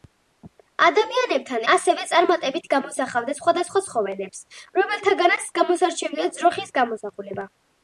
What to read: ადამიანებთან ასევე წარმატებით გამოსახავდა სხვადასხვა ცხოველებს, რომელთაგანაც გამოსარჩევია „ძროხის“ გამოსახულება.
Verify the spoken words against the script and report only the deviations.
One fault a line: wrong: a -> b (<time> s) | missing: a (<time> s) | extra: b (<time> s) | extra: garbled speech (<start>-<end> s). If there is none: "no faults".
no faults